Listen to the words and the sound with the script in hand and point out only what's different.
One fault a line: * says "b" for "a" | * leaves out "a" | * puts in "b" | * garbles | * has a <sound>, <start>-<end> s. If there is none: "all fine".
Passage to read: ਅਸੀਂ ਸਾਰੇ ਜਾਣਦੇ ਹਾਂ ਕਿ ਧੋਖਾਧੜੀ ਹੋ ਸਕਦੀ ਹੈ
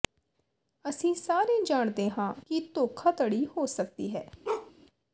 * has a bark, 4.4-4.7 s